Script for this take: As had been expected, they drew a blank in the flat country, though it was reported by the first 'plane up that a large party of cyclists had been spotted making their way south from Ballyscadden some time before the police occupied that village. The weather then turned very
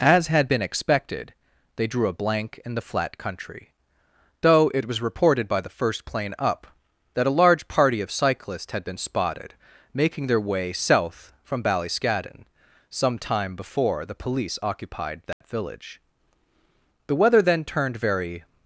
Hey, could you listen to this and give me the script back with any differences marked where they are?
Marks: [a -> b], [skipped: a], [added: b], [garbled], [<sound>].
As had been expected, they drew a blank in the flat country, though it was reported by the first 'plane up that a large party of cyclists had been spotted making their way south from Ballyscadden some time before the police occupied that [dropout] village. The weather then turned very